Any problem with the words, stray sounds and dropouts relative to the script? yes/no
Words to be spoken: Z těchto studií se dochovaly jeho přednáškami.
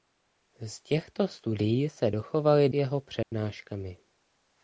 yes